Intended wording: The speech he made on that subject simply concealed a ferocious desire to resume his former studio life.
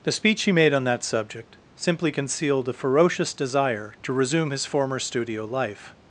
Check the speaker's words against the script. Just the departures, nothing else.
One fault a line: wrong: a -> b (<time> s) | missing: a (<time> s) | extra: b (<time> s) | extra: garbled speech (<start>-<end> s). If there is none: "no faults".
no faults